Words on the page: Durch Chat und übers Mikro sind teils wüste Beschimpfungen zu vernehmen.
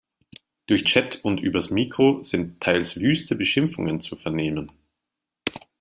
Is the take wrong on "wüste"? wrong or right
right